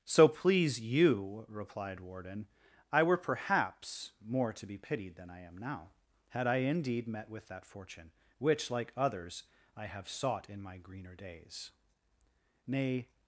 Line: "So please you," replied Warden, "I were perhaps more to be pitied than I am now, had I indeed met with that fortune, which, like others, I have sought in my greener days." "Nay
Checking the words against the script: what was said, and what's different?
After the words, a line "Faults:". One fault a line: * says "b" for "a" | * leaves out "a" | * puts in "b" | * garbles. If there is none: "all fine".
"So please you," replied Warden, "I were perhaps more to be pitied than I am now, had I indeed met with that fortune, which, like others, I have sought in my greener days." "Nay
Faults:
all fine